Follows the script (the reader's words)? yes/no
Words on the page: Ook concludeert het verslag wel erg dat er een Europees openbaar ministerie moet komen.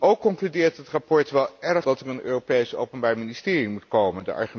yes